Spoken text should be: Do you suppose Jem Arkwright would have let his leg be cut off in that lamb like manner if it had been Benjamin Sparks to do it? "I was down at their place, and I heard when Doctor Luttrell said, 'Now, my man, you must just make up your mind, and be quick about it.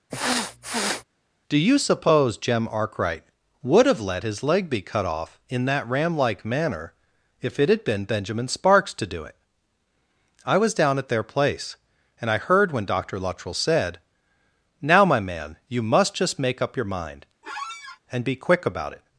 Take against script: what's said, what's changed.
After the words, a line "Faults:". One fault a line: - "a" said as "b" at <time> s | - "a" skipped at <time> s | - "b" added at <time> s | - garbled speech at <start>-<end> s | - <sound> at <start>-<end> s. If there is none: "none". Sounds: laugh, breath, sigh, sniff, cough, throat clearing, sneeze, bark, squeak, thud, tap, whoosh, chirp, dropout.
Do you suppose Jem Arkwright would have let his leg be cut off in that ram like manner if it had been Benjamin Sparks to do it? "I was down at their place, and I heard when Doctor Luttrell said, 'Now, my man, you must just make up your mind, and be quick about it.
Faults:
- sniff at 0.1-1.0 s
- "lamb" said as "ram" at 5.9 s
- squeak at 17.4-18.0 s